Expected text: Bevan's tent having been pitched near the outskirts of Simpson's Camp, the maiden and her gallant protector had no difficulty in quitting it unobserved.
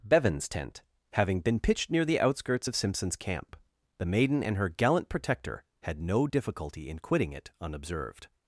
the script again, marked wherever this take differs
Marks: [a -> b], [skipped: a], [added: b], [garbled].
Bevan's tent having been pitched near the outskirts of Simpson's Camp, the maiden and her gallant protector had no difficulty in quitting it unobserved.